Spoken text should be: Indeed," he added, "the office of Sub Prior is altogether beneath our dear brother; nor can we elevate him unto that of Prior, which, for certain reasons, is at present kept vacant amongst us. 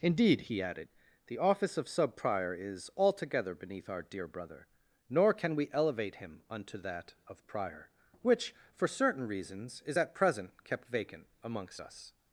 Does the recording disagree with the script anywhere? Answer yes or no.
no